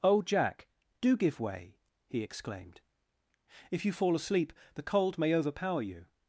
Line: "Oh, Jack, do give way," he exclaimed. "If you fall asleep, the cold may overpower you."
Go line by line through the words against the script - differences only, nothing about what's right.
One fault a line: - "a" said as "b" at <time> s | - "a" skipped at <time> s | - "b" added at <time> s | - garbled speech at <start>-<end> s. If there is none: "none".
none